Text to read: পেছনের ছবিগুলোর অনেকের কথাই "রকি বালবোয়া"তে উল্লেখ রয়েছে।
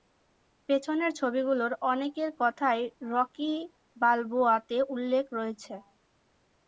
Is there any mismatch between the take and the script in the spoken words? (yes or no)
no